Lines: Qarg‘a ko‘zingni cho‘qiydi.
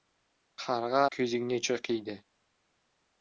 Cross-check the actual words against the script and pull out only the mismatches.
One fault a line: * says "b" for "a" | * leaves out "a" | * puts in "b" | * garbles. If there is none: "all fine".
all fine